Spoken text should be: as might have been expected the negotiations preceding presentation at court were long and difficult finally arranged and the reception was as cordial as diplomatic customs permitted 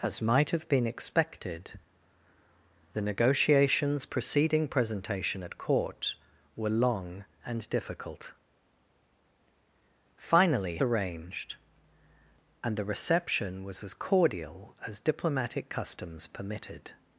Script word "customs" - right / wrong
right